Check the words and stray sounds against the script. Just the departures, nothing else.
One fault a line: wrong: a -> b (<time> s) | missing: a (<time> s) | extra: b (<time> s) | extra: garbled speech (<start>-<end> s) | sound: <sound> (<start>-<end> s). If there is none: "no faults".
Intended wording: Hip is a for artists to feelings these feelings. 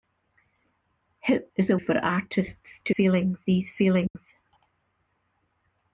sound: dropout (4.1-4.2 s)